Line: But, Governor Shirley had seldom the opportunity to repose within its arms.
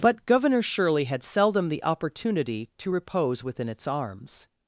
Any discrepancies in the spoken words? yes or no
no